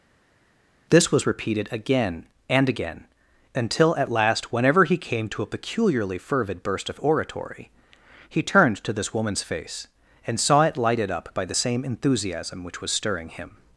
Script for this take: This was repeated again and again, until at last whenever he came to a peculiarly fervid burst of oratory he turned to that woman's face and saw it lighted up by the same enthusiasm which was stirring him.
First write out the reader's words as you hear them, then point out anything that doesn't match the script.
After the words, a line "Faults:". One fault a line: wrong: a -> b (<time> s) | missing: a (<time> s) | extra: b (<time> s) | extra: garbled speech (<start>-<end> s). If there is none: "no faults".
This was repeated again and again, until at last whenever he came to a peculiarly fervid burst of oratory he turned to this woman's face and saw it lighted up by the same enthusiasm which was stirring him.
Faults:
wrong: that -> this (8.9 s)